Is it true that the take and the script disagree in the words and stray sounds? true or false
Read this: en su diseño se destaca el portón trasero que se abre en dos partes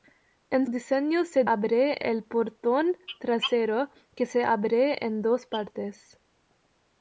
true